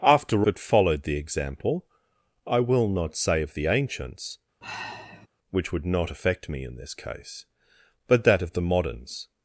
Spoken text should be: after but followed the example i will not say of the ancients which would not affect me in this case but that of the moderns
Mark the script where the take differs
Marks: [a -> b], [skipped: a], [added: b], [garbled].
after but followed the example i will not say of the ancients which would not affect me in this case but that of the moderns